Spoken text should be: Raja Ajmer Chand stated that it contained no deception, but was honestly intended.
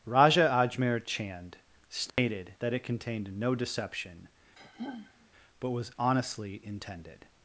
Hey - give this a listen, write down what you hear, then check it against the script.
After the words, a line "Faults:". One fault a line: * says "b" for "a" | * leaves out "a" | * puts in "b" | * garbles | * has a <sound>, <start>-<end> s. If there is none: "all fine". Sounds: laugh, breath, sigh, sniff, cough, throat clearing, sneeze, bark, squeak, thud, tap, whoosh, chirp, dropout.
Raja Ajmer Chand stated that it contained no deception, but was honestly intended.
Faults:
* has a dropout, 2.1-2.2 s
* has a sigh, 4.6-5.3 s